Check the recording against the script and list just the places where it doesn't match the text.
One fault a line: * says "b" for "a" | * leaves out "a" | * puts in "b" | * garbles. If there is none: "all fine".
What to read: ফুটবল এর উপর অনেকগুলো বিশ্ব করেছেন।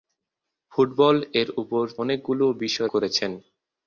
all fine